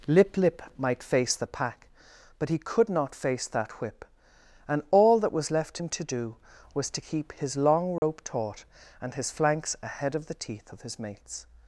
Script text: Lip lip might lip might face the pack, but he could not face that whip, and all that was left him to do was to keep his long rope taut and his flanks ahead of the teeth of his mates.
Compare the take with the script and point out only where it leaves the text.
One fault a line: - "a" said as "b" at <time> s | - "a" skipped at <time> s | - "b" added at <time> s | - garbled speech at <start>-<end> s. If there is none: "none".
- "lip might" skipped at 1.0 s